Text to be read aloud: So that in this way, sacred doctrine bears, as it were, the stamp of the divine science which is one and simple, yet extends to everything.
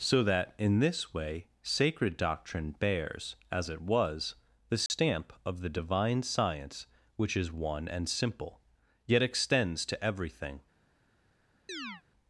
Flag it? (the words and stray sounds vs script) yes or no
yes